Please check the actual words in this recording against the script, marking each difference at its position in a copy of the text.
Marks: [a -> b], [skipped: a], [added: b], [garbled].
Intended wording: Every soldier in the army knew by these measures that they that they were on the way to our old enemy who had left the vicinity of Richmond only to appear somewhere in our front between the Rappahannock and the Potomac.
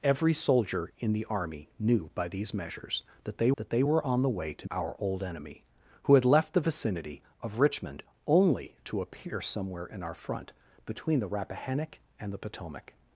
Every soldier in the army knew by these measures that they that they were on the way to our old enemy who had left the vicinity of Richmond only to appear somewhere in our front between the Rappahannock and the Potomac.